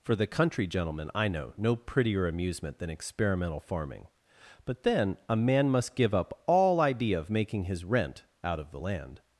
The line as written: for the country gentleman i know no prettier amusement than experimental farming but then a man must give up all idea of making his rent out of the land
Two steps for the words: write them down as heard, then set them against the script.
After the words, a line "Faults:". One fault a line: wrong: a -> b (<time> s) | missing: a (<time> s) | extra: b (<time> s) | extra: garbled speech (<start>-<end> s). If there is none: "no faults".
for the country gentleman i know no prettier amusement than experimental farming but then a man must give up all idea of making his rent out of the land
Faults:
no faults